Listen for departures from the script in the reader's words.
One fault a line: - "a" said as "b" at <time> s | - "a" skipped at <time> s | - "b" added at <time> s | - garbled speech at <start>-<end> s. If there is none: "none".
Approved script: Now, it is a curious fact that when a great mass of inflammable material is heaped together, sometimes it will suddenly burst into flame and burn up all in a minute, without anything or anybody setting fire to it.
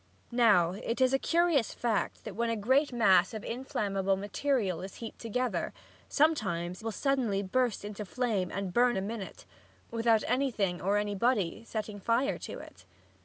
- "it" skipped at 6.8 s
- "up all in" skipped at 9.0 s